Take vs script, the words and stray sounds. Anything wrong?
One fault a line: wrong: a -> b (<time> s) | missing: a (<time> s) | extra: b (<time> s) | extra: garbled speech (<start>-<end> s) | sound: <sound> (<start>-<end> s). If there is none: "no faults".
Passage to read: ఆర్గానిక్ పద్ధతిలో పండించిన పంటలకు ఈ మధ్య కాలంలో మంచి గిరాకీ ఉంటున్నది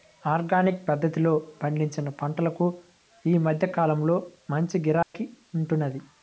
sound: dropout (5.0-5.1 s)